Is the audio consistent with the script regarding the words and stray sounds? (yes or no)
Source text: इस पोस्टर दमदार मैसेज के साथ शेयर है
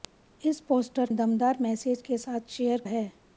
yes